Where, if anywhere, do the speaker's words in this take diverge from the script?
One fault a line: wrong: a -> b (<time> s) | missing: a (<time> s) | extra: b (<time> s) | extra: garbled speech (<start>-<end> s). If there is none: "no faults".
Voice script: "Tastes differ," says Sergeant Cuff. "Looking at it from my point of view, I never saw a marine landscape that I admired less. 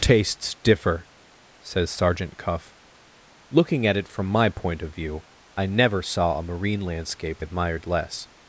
missing: that I (7.4 s)